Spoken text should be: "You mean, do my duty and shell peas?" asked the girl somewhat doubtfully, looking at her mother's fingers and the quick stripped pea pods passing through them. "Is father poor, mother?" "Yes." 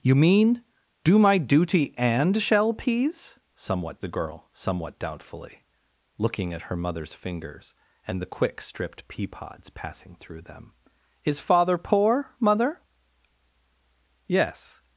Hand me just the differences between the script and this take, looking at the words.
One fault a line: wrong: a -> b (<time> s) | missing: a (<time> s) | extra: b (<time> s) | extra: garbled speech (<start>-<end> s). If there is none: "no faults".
wrong: asked -> somewhat (3.6 s)